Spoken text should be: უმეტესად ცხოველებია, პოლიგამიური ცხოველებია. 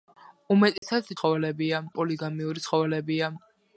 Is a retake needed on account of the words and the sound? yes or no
yes